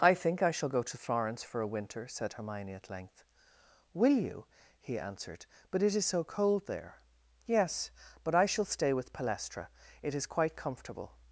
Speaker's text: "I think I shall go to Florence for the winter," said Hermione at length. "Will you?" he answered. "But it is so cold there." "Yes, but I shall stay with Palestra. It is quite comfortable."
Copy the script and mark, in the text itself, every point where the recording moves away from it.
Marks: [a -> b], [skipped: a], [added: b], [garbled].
"I think I shall go to Florence for [the -> a] winter," said Hermione at length. "Will you?" he answered. "But it is so cold there." "Yes, but I shall stay with Palestra. It is quite comfortable."